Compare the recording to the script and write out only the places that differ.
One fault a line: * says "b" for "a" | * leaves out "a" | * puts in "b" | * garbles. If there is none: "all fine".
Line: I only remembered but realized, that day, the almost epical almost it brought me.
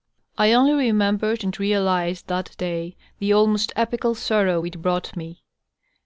* says "and" for "but"
* says "sorrow" for "almost"